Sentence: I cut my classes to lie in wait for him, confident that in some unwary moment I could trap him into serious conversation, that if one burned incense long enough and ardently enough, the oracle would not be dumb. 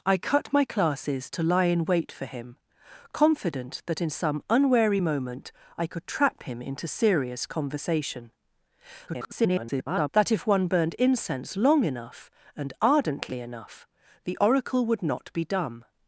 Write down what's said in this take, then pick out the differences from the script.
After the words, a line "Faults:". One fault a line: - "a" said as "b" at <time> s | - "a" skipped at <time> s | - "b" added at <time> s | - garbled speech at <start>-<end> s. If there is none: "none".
I cut my classes to lie in wait for him, confident that in some unwary moment I could trap him into serious conversation, [garbled] that if one burned incense long enough and ardently enough, the oracle would not be dumb.
Faults:
- garbled speech at 9.1-10.1 s